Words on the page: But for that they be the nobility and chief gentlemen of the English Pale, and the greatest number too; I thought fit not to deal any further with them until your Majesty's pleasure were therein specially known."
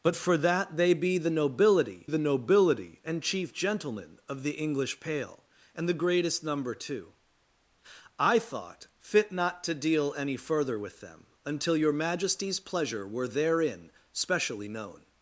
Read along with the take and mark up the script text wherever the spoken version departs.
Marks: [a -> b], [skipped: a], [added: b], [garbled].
But for that they be the nobility [added: the nobility] and chief gentlemen of the English Pale, and the greatest number too; I thought fit not to deal any further with them until your Majesty's pleasure were therein specially known."